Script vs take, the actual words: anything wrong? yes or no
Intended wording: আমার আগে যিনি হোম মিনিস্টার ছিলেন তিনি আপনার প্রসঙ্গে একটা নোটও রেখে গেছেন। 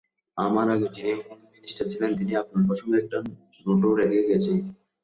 no